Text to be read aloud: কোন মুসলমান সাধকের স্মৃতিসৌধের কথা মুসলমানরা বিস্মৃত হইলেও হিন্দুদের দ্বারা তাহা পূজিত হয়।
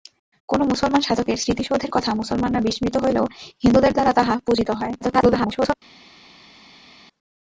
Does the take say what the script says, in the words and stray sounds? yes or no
no